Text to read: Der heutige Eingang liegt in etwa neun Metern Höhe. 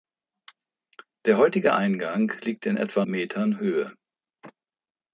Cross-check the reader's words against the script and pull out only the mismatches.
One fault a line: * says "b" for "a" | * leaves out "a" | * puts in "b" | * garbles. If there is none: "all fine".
* leaves out "neun"